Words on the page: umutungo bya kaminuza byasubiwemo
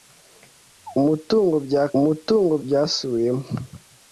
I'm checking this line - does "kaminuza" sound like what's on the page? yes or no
no